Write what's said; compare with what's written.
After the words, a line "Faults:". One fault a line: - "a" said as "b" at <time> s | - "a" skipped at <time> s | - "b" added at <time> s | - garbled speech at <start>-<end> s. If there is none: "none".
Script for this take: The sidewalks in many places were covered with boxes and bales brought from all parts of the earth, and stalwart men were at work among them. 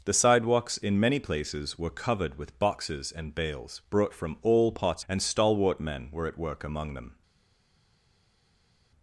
The sidewalks in many places were covered with boxes and bales brought from all parts and stalwart men were at work among them.
Faults:
- "of the earth" skipped at 5.0 s